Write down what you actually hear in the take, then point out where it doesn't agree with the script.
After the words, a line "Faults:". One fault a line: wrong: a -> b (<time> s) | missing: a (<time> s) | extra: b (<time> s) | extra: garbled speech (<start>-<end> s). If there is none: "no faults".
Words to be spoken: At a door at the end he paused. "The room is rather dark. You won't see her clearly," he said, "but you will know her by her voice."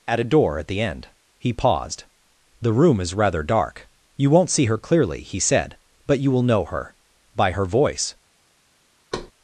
At a door at the end he paused. "The room is rather dark. You won't see her clearly," he said, "but you will know her by her voice."
Faults:
no faults